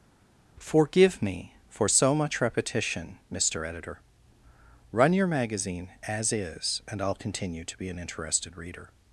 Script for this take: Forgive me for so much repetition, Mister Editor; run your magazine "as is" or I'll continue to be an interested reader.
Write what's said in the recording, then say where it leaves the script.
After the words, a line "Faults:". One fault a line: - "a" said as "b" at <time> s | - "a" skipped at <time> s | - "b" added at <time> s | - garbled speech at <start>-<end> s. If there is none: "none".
Forgive me for so much repetition, Mister Editor; run your magazine "as is" and I'll continue to be an interested reader.
Faults:
- "or" said as "and" at 6.9 s